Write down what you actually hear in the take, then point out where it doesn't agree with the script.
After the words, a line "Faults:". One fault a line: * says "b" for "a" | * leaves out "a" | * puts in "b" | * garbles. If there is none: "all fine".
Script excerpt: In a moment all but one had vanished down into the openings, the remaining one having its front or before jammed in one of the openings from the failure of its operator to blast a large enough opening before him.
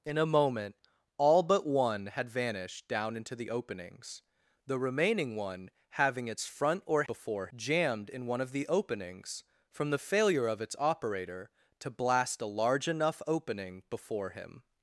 In a moment all but one had vanished down into the openings, the remaining one having its front or before jammed in one of the openings from the failure of its operator to blast a large enough opening before him.
Faults:
all fine